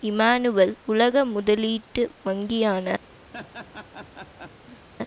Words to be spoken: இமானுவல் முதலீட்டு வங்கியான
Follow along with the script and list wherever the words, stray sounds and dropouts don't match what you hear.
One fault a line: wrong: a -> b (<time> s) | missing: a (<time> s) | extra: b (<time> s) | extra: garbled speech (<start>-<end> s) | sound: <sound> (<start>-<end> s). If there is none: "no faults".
extra: உலக (0.8 s)
sound: laugh (3.3-4.9 s)